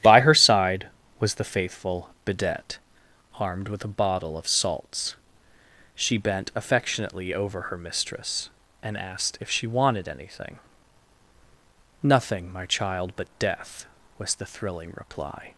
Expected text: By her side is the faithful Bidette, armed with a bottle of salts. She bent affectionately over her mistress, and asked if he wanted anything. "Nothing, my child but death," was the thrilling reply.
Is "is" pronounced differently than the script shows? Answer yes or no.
yes